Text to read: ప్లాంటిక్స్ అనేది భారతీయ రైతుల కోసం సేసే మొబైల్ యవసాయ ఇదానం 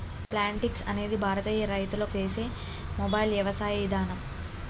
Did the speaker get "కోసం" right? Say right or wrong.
wrong